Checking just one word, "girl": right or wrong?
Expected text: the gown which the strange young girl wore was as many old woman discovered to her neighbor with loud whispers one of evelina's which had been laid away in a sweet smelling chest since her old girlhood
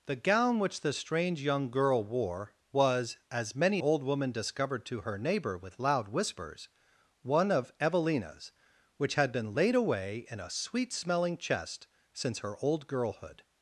right